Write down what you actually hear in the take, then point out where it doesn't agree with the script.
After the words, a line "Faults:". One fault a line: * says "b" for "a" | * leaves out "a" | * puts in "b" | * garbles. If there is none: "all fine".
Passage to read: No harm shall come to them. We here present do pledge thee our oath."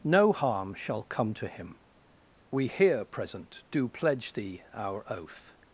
No harm shall come to him. We here present do pledge thee our oath."
Faults:
* says "him" for "them"